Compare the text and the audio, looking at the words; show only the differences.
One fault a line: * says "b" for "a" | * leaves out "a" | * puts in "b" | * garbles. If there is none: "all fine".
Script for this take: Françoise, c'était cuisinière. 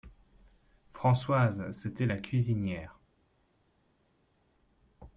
* puts in "la"